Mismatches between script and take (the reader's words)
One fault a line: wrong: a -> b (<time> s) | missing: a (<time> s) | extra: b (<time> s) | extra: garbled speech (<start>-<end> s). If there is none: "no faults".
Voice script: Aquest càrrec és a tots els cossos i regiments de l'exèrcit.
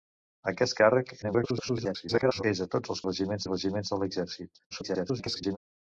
extra: garbled speech (1.2-2.4 s)
wrong: cossos -> regiments (3.0 s)
extra: garbled speech (4.7-5.6 s)